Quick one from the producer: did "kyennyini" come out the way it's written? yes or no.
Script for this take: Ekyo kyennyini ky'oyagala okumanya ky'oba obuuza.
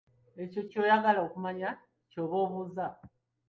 no